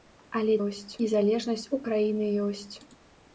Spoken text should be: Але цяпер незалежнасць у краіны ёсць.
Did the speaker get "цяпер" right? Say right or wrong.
wrong